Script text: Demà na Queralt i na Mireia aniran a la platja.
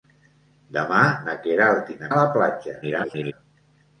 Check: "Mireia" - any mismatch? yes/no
yes